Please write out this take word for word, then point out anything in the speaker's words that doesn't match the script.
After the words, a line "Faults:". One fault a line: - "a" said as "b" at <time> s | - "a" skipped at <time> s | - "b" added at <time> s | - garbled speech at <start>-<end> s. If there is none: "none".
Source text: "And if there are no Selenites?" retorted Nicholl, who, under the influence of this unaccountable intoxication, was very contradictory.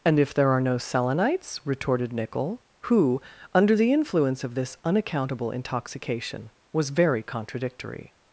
"And if there are no Selenites?" retorted Nicholl, who, under the influence of this unaccountable intoxication, was very contradictory.
Faults:
none